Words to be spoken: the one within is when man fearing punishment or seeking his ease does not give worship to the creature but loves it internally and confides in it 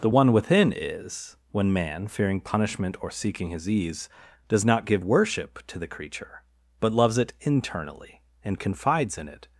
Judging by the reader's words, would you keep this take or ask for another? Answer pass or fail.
pass